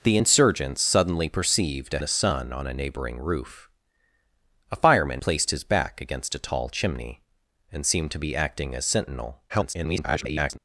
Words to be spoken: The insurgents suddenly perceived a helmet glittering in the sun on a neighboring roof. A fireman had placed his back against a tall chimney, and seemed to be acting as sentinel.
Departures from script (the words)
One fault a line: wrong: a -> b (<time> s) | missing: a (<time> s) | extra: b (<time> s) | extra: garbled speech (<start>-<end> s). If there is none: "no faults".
missing: helmet glittering in (2.0 s)
missing: had (5.2 s)
extra: garbled speech (9.5-10.6 s)